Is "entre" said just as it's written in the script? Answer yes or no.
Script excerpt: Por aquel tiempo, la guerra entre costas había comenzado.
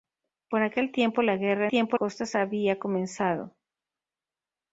no